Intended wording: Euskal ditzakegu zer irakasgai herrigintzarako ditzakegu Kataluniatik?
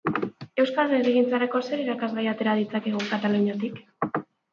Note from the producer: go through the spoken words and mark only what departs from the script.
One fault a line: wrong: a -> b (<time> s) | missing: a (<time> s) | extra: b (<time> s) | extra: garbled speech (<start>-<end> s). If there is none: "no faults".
wrong: ditzakegu -> herrigintzarako (1.0 s)
wrong: herrigintzarako -> atera (2.3 s)